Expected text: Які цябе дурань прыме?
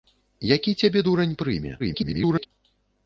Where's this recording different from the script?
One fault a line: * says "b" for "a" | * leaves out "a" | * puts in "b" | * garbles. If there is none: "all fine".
* garbles